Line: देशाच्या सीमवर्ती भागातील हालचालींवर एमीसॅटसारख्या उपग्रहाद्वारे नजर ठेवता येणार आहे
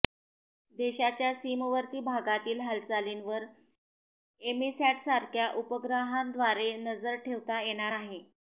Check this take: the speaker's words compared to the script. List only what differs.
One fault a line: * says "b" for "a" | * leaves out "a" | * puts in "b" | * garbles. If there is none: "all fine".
all fine